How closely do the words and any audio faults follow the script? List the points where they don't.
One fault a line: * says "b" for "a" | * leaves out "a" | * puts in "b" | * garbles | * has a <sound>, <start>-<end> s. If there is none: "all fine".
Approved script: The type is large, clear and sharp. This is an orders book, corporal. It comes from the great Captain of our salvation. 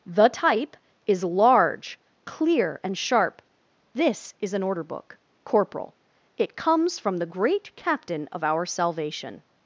* says "order" for "orders"